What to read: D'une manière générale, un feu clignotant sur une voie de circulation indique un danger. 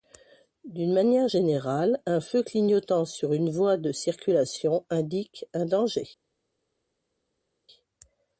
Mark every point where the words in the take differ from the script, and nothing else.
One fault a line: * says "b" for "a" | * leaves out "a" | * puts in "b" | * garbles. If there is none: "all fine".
all fine